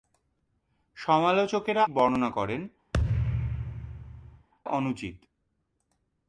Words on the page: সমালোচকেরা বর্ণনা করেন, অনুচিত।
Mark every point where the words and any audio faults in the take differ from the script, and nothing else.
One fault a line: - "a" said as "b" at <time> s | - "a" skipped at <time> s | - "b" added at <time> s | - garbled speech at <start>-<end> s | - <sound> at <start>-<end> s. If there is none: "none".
- thud at 2.9-4.5 s